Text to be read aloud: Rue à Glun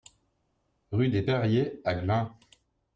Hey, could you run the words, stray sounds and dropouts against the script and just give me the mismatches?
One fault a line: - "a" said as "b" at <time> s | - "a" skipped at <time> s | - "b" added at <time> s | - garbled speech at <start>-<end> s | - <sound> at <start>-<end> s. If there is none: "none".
- "des Perriers" added at 1.1 s